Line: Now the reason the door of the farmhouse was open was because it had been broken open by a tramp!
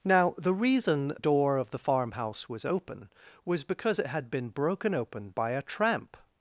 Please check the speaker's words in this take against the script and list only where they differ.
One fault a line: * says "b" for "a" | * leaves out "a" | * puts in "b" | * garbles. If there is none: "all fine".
* leaves out "the"